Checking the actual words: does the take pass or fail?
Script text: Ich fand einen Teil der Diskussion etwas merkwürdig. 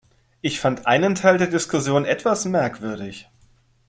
pass